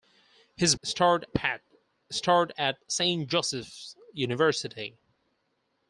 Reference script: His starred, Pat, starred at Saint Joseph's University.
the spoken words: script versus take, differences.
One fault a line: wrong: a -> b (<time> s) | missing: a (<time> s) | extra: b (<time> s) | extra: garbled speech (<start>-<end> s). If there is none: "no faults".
no faults